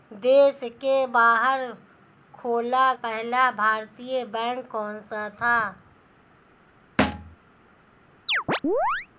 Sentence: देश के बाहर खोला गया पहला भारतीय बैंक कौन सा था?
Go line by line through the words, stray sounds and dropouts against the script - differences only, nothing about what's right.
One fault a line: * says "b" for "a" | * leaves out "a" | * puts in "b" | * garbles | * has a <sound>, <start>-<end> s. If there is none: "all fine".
* leaves out "गया"
* has a thud, 7.0-7.4 s
* has a chirp, 8.3-9.1 s